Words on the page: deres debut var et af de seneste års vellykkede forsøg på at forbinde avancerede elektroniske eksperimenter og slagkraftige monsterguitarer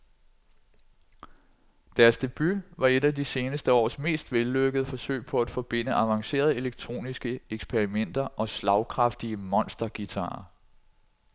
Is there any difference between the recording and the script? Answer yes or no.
yes